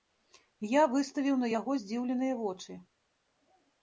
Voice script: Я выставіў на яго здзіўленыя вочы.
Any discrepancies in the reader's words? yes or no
no